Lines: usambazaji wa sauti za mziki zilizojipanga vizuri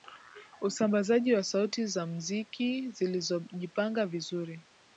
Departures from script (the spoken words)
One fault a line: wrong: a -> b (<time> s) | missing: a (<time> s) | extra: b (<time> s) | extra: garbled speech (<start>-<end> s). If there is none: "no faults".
no faults